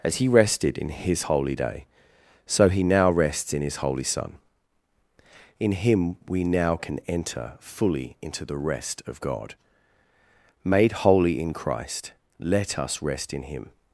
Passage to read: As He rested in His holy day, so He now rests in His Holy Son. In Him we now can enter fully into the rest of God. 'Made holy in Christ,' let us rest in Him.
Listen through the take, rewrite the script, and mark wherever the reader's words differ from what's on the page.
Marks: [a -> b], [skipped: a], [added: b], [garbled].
As He rested in His holy day, so He now rests in His Holy Son. In Him we now can enter fully into the rest of God. 'Made holy in Christ,' let us rest in Him.